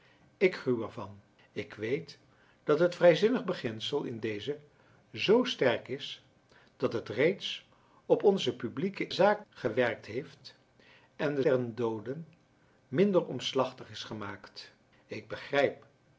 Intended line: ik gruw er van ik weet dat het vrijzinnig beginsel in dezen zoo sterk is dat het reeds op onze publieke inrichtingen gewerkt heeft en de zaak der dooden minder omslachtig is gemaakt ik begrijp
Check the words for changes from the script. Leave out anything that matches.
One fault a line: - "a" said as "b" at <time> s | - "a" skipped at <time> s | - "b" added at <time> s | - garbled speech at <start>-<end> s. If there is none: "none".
- "inrichtingen" said as "zaak" at 9.1 s
- "zaak" skipped at 11.4 s